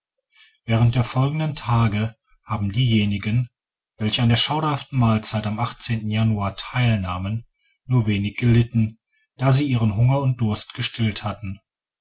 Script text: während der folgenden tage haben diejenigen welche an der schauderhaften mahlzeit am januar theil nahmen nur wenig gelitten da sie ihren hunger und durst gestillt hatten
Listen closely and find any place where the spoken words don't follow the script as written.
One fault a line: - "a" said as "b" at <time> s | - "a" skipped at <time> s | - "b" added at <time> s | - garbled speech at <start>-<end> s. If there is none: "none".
none